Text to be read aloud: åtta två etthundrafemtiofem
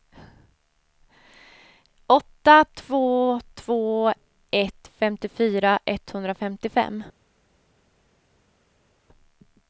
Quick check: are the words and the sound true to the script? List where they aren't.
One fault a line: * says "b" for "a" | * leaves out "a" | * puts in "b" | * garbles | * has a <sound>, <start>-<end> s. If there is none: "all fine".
* puts in "två ett femtiofyra"